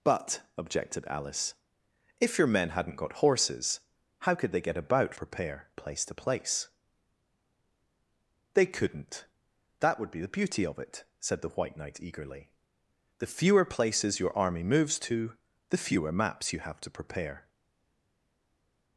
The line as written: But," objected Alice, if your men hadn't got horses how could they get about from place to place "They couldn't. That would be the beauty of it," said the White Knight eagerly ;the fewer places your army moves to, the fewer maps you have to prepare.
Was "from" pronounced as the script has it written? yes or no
no